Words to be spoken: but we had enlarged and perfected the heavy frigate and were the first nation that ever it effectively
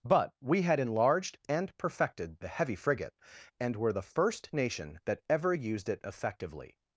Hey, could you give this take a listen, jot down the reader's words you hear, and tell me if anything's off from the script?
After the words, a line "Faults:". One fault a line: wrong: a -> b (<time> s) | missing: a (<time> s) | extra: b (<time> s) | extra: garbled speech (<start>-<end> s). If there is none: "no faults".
but we had enlarged and perfected the heavy frigate and were the first nation that ever used it effectively
Faults:
extra: used (5.5 s)